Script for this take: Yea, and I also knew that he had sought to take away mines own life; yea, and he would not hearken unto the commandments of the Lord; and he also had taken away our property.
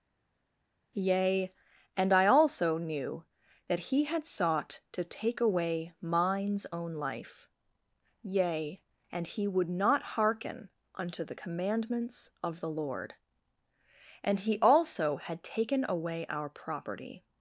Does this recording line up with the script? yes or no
yes